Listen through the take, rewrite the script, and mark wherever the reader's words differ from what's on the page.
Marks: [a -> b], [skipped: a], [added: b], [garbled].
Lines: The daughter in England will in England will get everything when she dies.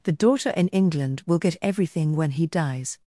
The daughter in England will [skipped: in England will] get everything when [she -> he] dies.